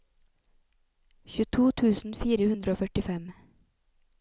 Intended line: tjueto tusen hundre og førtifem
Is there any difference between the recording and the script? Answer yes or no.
yes